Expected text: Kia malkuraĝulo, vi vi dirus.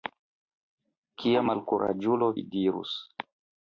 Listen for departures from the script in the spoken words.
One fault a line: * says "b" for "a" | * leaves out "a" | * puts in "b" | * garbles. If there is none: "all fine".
* leaves out "vi"